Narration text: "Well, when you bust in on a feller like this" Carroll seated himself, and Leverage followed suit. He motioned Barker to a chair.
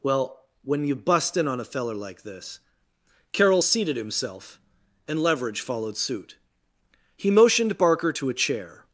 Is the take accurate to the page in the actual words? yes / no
yes